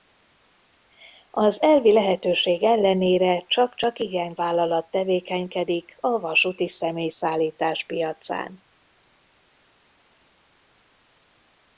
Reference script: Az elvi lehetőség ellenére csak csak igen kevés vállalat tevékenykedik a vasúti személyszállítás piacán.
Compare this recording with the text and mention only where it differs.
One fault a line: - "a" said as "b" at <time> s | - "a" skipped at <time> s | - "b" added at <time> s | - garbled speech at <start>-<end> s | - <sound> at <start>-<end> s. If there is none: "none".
- "kevés" skipped at 4.3 s